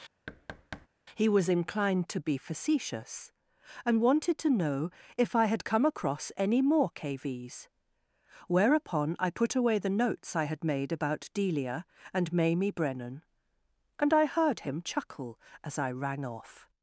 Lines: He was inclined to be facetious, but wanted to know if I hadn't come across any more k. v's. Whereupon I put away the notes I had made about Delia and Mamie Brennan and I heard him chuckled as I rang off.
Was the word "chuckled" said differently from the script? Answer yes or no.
yes